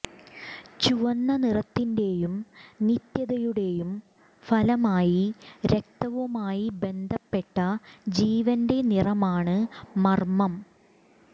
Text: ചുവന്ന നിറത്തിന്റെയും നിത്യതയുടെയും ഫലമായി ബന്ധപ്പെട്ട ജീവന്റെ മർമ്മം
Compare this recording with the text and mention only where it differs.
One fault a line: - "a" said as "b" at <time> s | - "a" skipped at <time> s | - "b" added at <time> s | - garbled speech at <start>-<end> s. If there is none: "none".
- "രക്തവുമായി" added at 5.6 s
- "നിറമാണ്" added at 8.9 s